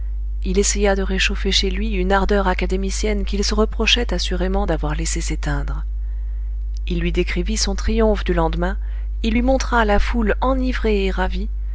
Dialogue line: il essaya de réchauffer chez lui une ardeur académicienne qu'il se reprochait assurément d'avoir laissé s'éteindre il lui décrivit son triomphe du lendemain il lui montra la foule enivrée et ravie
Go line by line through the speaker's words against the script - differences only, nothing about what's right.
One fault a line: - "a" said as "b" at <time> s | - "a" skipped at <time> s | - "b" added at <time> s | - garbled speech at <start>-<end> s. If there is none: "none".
none